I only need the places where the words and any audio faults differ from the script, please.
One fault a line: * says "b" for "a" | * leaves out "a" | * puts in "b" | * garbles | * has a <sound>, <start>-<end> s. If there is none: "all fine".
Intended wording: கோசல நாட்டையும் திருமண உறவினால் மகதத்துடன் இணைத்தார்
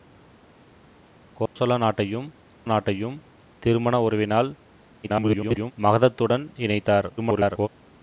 * has a dropout, 1.5-1.6 s
* puts in "நாட்டையும்"
* garbles
* garbles